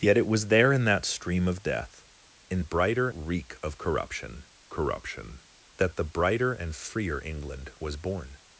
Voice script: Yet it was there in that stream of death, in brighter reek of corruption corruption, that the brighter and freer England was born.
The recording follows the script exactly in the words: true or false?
true